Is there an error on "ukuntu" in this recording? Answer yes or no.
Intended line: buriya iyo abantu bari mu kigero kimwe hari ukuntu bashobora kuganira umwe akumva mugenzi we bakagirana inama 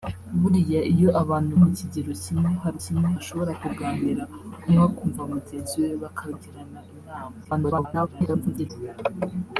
yes